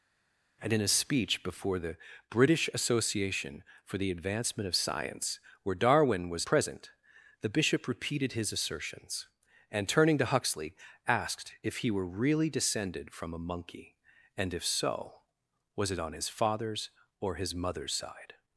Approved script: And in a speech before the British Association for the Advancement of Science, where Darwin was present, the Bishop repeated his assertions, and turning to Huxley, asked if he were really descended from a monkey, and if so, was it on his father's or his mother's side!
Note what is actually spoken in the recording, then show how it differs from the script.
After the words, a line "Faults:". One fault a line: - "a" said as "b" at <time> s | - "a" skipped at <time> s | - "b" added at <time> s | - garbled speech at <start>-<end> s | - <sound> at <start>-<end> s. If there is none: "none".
And in a speech before the British Association for the Advancement of Science, where Darwin was present, the Bishop repeated his assertions, and turning to Huxley, asked if he were really descended from a monkey, and if so, was it on his father's or his mother's side!
Faults:
none